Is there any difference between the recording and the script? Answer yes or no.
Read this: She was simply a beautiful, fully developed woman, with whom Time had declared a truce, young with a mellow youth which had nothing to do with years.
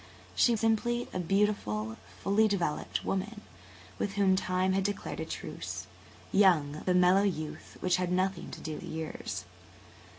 yes